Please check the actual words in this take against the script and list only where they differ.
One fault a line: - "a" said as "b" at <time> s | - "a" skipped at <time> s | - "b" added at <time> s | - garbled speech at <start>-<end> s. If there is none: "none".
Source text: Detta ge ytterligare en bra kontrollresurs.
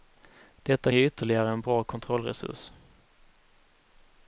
none